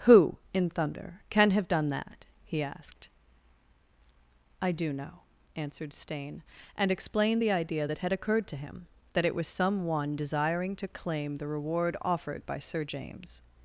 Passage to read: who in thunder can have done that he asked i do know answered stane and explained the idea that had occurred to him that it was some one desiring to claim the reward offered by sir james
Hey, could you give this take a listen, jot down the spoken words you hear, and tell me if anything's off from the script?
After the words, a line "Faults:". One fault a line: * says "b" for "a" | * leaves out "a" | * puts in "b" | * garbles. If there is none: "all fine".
who in thunder can have done that he asked i do know answered stane and explained the idea that had occurred to him that it was some one desiring to claim the reward offered by sir james
Faults:
all fine